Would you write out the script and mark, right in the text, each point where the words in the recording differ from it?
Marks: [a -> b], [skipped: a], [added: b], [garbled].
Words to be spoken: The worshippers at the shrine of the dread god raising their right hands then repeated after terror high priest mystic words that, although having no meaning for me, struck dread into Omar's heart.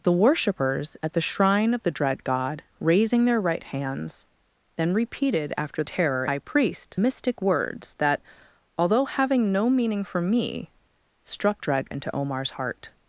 The worshippers at the shrine of the dread god raising their right hands then repeated after terror high priest mystic words that, although having no meaning for me, struck dread into Omar's heart.